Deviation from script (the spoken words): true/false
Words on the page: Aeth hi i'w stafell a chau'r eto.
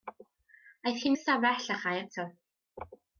false